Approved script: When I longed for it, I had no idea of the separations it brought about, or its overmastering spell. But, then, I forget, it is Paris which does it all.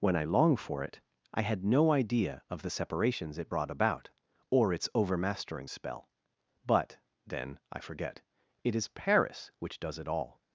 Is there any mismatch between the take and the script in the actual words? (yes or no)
yes